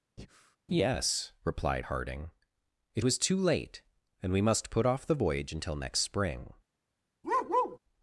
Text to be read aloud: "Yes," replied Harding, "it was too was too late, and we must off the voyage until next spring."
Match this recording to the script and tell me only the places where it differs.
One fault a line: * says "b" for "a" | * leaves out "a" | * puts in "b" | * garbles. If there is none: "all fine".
* leaves out "was too"
* puts in "put"